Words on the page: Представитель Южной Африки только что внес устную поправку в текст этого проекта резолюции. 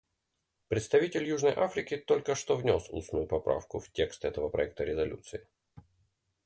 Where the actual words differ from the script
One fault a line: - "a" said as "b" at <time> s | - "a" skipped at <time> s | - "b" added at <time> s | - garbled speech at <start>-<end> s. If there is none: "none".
none